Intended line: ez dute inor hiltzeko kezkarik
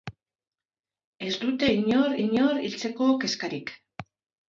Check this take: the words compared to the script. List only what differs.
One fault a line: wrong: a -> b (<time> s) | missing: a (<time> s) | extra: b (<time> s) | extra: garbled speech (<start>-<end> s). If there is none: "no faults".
extra: inor (2.2 s)